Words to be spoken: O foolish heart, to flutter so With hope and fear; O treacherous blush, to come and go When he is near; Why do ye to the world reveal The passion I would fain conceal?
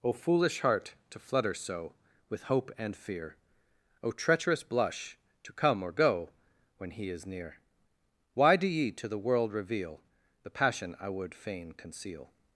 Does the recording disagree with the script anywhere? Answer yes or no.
yes